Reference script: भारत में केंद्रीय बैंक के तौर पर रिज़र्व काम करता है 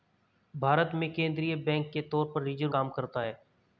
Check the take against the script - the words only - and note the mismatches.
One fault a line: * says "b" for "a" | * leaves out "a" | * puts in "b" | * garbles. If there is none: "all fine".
all fine